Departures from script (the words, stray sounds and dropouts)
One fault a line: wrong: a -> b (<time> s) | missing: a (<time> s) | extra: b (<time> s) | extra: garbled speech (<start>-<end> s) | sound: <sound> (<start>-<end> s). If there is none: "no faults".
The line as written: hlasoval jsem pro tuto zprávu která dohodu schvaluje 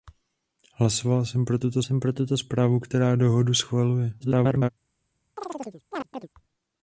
extra: jsem pro tuto (1.8 s)
extra: garbled speech (4.2-4.7 s)
sound: chirp (5.4-6.3 s)